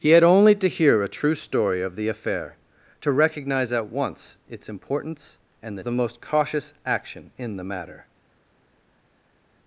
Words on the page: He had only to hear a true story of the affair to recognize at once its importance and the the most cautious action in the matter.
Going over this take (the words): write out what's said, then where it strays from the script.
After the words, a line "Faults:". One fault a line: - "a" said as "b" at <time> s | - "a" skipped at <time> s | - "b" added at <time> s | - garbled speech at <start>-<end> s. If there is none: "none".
He had only to hear a true story of the affair to recognize at once its importance and the the most cautious action in the matter.
Faults:
none